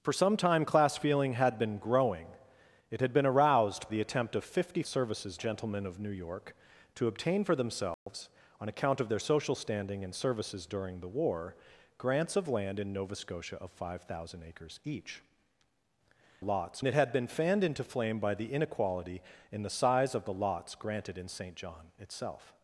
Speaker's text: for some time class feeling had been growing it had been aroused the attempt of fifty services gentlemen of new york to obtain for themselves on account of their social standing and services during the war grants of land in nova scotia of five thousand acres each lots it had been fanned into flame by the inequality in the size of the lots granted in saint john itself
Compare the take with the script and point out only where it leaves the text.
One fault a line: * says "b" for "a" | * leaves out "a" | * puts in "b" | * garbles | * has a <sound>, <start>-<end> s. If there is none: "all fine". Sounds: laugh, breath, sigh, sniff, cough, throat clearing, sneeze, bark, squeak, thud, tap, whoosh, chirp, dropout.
* has a dropout, 7.9-8.1 s